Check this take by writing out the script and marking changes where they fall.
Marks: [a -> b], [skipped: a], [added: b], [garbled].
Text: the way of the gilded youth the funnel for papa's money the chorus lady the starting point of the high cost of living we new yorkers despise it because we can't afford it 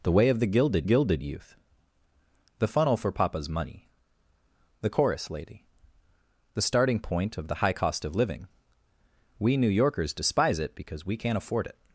the way of the gilded [added: gilded] youth the funnel for papa's money the chorus lady the starting point of the high cost of living we new yorkers despise it because we can't afford it